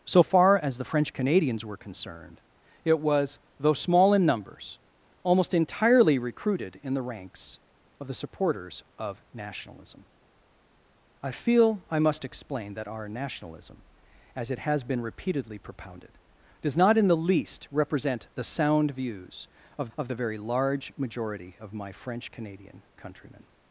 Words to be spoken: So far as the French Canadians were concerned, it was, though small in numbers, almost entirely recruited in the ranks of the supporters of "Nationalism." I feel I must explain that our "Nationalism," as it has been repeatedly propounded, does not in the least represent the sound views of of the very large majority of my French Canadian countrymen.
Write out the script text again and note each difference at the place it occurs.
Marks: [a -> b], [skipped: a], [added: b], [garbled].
So far as the French Canadians were concerned, it was, though small in numbers, almost entirely recruited in the ranks of the supporters of "Nationalism." I feel I must explain that our "Nationalism," as it has been repeatedly propounded, does not in the least represent the sound views of of the very large majority of my French Canadian countrymen.